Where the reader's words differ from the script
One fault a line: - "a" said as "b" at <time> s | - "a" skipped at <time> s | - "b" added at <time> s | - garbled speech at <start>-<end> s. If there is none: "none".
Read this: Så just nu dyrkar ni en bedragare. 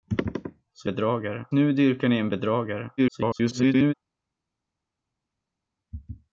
- "just" said as "bedragare" at 0.8 s
- garbled speech at 3.0-3.9 s